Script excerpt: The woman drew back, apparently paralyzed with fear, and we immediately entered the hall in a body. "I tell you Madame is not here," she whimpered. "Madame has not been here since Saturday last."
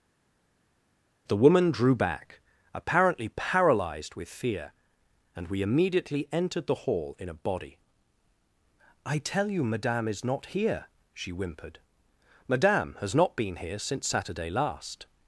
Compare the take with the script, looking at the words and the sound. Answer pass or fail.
pass